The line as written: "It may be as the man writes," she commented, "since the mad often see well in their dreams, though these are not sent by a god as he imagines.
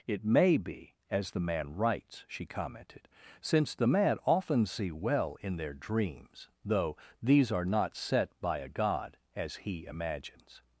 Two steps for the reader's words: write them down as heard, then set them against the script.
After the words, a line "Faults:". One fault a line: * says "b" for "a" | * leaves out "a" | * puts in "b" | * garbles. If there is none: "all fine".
"It may be as the man writes," she commented, "since the mad often see well in their dreams, though these are not set by a god as he imagines.
Faults:
* says "set" for "sent"